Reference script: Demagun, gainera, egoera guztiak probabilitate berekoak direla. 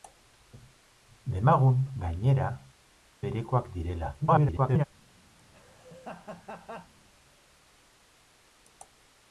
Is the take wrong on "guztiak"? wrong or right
wrong